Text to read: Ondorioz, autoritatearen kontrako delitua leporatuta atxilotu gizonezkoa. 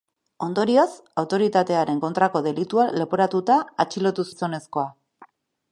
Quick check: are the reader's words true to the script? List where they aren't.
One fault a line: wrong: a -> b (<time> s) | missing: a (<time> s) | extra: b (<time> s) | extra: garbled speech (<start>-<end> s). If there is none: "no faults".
no faults